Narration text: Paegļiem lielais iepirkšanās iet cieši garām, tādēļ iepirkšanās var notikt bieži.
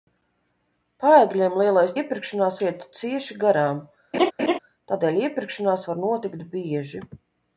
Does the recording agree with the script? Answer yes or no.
yes